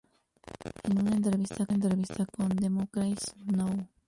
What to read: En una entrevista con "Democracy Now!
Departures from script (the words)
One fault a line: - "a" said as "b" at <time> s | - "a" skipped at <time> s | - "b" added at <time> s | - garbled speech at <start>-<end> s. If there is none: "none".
- "entrevista" added at 1.7 s